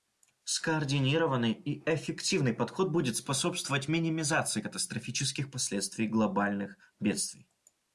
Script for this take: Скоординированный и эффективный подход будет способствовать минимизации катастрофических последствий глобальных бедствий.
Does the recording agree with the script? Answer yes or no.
yes